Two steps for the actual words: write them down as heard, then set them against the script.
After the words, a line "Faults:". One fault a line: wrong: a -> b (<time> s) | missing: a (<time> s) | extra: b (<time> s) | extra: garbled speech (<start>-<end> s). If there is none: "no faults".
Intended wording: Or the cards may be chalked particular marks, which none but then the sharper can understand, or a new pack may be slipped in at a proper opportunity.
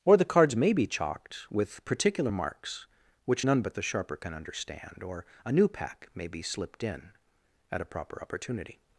Or the cards may be chalked with particular marks, which none but the sharper can understand, or a new pack may be slipped in at a proper opportunity.
Faults:
extra: with (1.5 s)
missing: then (3.7 s)